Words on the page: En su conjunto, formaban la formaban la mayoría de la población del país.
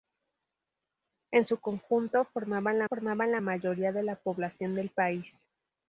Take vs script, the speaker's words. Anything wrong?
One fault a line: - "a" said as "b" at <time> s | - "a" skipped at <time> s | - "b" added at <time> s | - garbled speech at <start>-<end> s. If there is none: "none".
none